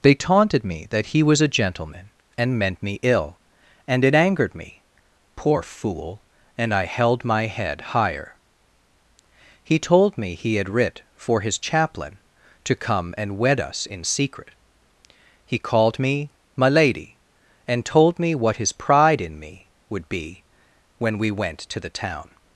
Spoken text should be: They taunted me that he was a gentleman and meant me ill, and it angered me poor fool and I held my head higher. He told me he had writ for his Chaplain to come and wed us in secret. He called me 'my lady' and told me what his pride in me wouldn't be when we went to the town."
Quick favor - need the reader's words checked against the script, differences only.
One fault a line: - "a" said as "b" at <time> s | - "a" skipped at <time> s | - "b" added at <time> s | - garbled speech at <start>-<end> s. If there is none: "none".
- "wouldn't" said as "would" at 19.9 s